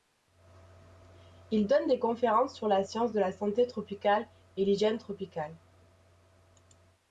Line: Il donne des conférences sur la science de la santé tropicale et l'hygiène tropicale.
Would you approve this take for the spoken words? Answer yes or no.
yes